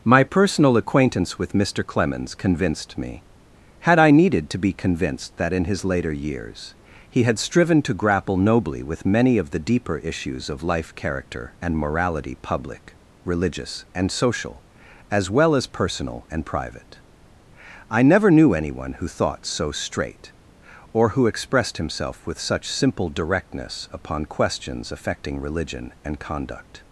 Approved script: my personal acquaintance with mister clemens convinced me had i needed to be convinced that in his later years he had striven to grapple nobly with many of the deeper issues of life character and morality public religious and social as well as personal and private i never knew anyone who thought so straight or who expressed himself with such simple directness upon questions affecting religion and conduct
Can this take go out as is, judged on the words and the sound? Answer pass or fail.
pass